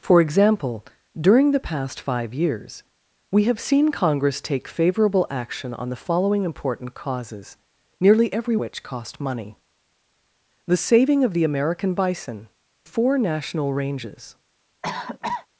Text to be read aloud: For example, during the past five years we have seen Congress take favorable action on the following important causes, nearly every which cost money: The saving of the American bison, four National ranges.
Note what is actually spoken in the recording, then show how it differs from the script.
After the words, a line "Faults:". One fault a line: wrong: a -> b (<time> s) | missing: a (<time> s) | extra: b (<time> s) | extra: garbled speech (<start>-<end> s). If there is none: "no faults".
For example, during the past five years we have seen Congress take favorable action on the following important causes, nearly every which cost money: The saving of the American bison, four National ranges.
Faults:
no faults